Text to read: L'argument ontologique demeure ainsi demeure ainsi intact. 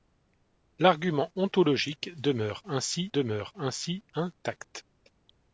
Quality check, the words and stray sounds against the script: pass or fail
pass